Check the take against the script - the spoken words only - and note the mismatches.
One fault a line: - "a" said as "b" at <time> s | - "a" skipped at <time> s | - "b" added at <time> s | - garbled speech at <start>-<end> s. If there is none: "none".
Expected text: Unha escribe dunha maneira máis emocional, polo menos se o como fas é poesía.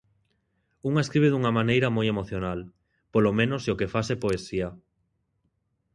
- "máis" said as "moi" at 1.9 s
- "como" said as "que" at 3.8 s